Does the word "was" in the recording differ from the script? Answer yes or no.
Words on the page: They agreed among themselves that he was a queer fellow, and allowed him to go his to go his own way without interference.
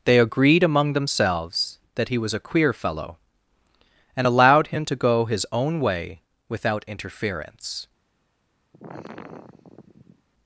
no